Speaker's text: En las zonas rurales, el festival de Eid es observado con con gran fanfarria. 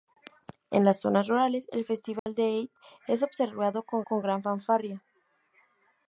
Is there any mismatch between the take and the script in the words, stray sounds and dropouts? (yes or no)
yes